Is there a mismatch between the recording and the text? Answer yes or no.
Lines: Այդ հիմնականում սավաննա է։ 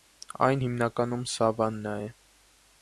yes